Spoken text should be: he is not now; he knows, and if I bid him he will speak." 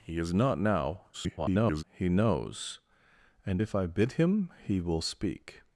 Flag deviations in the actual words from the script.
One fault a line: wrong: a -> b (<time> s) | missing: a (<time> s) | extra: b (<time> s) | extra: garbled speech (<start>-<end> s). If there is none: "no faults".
extra: garbled speech (1.1-1.8 s)